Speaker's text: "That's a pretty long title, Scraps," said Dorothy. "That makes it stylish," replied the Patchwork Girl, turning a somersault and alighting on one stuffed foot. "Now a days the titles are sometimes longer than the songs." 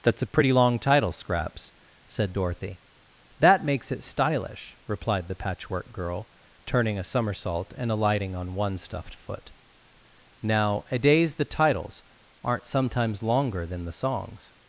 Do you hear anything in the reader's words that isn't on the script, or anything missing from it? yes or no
yes